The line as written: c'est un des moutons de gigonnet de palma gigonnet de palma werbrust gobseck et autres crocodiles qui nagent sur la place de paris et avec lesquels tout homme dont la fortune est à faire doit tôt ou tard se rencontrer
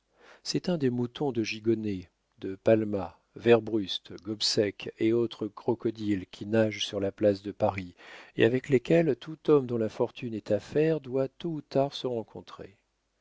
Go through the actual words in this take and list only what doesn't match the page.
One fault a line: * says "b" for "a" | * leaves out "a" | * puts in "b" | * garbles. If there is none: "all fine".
* leaves out "gigonnet de palma"